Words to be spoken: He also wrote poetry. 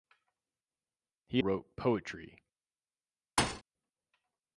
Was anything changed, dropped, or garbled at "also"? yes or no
yes